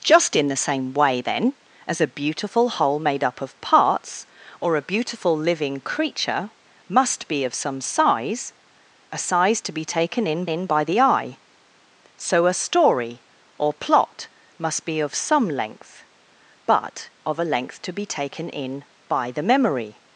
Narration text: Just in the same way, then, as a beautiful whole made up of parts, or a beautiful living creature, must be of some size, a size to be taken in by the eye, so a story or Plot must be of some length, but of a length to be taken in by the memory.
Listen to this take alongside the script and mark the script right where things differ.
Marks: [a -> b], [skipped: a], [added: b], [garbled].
Just in the same way, then, as a beautiful whole made up of parts, or a beautiful living creature, must be of some size, a size to be taken in [added: in] by the eye, so a story or Plot must be of some length, but of a length to be taken in by the memory.